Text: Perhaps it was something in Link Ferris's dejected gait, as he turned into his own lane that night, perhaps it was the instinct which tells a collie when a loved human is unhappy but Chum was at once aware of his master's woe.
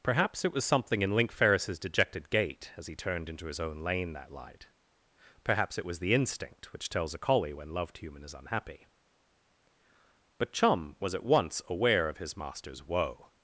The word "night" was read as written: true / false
false